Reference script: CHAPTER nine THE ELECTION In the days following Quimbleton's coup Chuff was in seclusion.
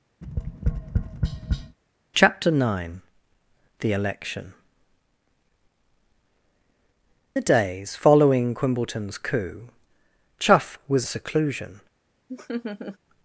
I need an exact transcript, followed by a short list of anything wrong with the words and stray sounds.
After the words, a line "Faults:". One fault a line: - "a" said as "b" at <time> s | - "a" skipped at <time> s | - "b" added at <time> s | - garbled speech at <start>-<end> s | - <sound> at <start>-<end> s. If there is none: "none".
CHAPTER nine THE ELECTION The days following Quimbleton's coup Chuff was seclusion.
Faults:
- tap at 0.2-1.8 s
- "In" skipped at 4.5 s
- "in" skipped at 11.1 s
- laugh at 12.3-13.0 s